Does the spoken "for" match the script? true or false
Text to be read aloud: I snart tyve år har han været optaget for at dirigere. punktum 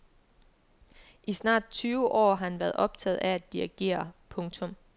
false